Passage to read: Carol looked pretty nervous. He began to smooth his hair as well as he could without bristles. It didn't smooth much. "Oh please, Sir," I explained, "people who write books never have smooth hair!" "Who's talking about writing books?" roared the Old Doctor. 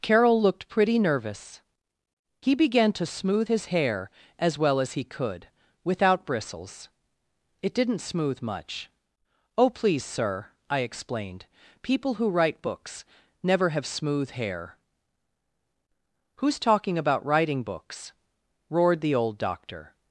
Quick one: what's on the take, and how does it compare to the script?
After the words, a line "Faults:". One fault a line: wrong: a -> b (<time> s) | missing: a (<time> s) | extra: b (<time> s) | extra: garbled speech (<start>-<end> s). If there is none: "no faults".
Carol looked pretty nervous. He began to smooth his hair as well as he could without bristles. It didn't smooth much. "Oh please, Sir," I explained, "people who write books never have smooth hair!" "Who's talking about writing books?" roared the Old Doctor.
Faults:
no faults